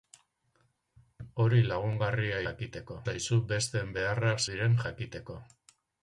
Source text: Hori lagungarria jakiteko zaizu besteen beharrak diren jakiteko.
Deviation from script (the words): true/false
false